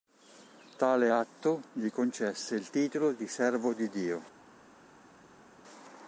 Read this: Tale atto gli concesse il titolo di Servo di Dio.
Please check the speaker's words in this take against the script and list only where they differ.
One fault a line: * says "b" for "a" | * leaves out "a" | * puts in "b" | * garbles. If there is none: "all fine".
all fine